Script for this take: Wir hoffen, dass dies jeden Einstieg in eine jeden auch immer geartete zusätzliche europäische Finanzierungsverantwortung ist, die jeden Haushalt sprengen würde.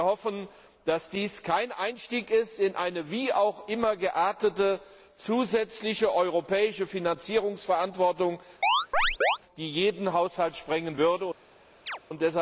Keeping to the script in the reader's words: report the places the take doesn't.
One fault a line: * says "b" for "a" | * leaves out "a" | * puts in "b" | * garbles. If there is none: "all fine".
* says "kein" for "jeden"
* says "wie" for "jeden"